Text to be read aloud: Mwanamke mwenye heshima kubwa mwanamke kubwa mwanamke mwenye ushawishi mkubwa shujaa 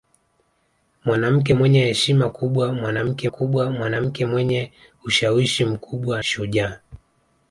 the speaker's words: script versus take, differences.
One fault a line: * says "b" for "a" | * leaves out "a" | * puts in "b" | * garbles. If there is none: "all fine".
all fine